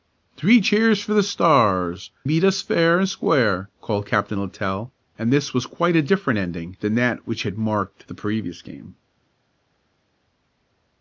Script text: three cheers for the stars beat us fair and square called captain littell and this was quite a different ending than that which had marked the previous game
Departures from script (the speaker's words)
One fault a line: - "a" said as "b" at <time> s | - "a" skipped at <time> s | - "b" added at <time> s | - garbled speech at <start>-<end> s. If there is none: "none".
none